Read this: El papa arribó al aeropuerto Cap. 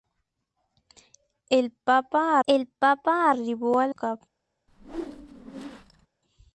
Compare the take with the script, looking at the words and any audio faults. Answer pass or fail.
fail